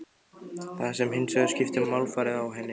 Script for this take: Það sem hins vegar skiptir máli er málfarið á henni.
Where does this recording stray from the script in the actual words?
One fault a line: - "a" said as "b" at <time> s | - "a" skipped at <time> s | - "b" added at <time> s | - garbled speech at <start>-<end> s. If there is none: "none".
- "máli" skipped at 1.9 s